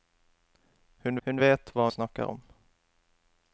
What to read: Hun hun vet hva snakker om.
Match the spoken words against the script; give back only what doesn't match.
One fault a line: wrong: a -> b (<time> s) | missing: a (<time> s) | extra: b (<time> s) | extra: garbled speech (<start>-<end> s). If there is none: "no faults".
no faults